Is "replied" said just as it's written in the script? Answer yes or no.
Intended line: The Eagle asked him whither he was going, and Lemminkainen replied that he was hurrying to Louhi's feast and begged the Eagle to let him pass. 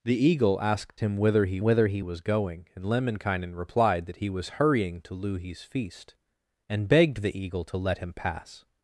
yes